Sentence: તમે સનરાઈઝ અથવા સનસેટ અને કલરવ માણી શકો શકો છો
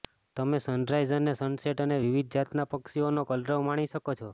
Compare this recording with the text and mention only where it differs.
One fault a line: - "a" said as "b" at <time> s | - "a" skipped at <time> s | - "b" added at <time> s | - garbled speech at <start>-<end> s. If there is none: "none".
- "અથવા" said as "અને" at 1.2 s
- "વિવિધ જાતના પક્ષીઓનો" added at 2.0 s
- "શકો" skipped at 4.1 s